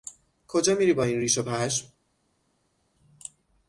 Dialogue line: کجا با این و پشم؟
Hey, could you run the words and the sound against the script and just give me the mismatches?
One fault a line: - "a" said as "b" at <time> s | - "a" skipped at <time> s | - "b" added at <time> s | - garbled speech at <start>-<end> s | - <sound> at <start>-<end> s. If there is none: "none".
- "میری" added at 0.8 s
- "ریش" added at 1.2 s